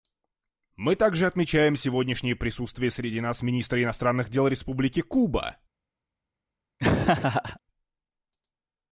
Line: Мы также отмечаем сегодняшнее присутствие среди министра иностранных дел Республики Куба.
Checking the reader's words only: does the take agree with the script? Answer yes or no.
no